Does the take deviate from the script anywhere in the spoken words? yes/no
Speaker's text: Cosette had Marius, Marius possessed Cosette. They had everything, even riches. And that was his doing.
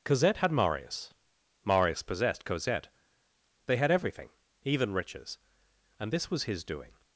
yes